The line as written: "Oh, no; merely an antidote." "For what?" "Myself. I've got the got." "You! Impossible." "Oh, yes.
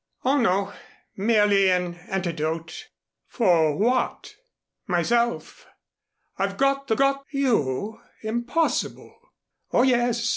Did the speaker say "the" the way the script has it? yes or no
yes